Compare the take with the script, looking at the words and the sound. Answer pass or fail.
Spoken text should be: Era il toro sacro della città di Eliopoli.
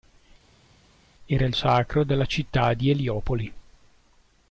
fail